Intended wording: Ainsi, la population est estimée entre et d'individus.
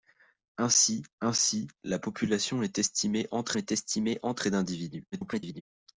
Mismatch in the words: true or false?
true